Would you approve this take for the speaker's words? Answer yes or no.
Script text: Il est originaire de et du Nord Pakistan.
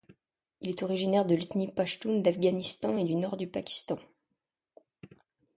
no